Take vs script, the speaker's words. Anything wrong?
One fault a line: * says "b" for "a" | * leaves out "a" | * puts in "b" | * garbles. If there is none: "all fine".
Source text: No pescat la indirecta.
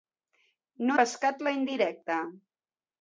all fine